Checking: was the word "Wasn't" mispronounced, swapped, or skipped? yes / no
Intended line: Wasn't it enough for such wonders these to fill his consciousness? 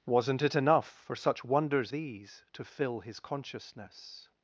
no